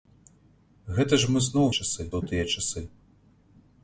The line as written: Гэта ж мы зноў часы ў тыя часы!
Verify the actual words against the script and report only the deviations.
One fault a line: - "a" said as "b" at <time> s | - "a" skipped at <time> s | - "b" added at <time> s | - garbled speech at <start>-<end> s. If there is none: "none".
none